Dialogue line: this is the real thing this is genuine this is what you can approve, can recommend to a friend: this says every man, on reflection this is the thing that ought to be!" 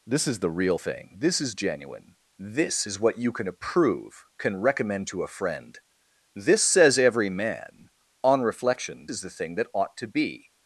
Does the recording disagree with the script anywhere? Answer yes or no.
yes